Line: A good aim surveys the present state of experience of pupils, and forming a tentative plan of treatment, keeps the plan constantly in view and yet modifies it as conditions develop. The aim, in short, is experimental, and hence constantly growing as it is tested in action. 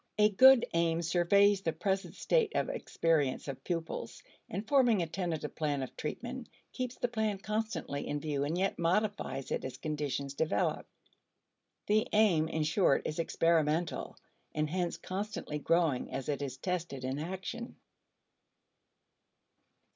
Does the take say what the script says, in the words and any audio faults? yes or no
yes